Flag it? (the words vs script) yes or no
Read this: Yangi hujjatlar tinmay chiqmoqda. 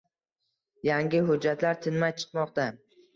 no